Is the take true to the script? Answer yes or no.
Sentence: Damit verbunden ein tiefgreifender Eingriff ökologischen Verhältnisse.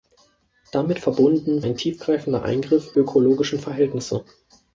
yes